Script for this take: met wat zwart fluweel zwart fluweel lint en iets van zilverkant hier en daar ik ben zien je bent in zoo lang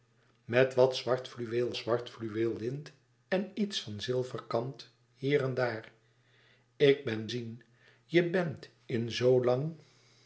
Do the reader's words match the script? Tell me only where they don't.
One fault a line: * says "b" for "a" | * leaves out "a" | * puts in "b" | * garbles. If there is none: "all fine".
all fine